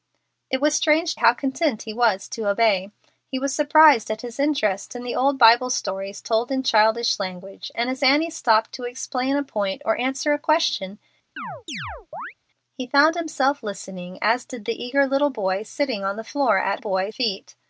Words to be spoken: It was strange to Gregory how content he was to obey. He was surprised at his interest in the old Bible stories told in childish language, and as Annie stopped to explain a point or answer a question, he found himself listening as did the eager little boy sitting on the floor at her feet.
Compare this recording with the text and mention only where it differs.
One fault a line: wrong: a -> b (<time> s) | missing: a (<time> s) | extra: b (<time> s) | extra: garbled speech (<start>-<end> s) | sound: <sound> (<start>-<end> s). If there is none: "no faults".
missing: to Gregory (1.1 s)
sound: chirp (11.4-12.3 s)
wrong: her -> boy (16.8 s)